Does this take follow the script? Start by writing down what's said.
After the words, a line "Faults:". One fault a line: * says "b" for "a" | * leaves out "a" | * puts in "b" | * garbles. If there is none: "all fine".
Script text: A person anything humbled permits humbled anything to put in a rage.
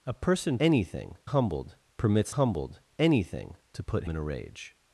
A person anything humbled permits humbled anything to put in a rage.
Faults:
all fine